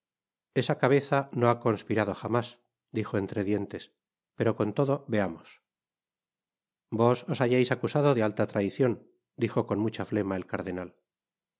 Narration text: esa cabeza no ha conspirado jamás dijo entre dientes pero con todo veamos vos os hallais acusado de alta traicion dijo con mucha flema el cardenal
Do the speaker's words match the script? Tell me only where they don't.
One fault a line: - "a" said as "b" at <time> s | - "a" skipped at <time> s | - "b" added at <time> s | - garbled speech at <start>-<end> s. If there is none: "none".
none